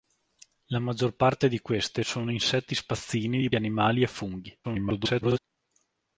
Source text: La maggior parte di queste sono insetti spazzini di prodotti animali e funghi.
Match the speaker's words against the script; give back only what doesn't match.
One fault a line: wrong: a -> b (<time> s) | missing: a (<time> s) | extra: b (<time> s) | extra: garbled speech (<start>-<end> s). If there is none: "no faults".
missing: prodotti (3.5 s)
extra: garbled speech (4.6-5.4 s)